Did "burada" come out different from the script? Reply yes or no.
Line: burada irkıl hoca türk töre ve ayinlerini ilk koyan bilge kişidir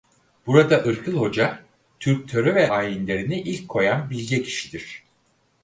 no